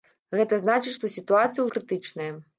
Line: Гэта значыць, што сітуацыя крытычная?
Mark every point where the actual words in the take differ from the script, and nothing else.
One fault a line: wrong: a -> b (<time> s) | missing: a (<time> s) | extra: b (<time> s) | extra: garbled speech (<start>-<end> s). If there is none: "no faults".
no faults